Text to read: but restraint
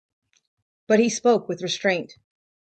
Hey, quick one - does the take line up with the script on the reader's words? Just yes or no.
no